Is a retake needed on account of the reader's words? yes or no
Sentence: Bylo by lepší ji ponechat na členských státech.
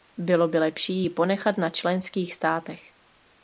no